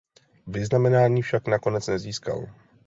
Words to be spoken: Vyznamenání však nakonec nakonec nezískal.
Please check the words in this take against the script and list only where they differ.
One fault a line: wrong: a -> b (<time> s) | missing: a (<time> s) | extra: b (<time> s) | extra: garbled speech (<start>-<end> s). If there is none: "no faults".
missing: nakonec (1.9 s)